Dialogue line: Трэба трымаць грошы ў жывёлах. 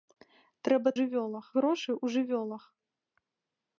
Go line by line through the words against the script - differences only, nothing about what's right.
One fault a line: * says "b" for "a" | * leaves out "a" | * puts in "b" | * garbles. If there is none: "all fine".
* says "жывёлах" for "трымаць"